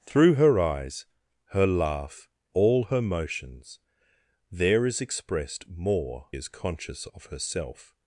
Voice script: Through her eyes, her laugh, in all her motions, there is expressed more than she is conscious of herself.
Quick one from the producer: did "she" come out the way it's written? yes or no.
no